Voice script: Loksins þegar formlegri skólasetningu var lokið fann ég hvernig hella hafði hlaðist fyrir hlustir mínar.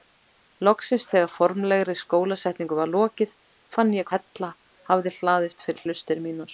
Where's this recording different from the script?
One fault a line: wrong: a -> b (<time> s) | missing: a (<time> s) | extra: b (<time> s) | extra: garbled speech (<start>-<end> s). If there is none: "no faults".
missing: hvernig (4.1 s)